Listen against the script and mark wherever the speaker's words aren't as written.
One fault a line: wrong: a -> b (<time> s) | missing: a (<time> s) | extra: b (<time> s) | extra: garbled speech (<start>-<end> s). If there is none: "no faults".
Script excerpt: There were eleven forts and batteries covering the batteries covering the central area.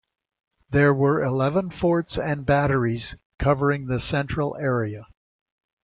missing: batteries covering the (4.0 s)